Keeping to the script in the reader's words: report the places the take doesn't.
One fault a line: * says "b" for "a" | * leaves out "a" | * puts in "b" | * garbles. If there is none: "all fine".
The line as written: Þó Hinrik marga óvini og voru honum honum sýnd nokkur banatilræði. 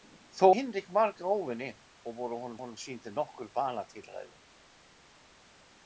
all fine